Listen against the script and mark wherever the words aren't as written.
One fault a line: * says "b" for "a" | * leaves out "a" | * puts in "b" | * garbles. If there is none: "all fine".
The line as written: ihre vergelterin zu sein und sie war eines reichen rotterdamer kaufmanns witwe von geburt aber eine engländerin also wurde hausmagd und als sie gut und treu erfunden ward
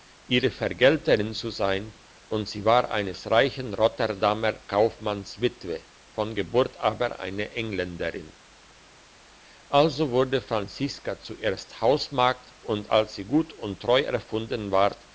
* puts in "franziska zuerst"